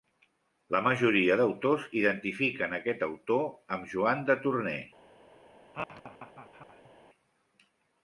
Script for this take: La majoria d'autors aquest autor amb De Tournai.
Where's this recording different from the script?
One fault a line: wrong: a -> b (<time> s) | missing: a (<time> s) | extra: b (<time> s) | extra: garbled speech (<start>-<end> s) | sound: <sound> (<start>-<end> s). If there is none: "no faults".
extra: identifiquen (2.0 s)
extra: Joan (4.0 s)
sound: laugh (5.7-6.9 s)